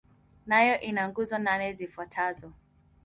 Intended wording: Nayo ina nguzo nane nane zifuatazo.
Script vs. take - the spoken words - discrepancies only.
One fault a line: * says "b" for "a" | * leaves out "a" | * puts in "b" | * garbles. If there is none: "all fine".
* leaves out "nane"